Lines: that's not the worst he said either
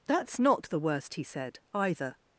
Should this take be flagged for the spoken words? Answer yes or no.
no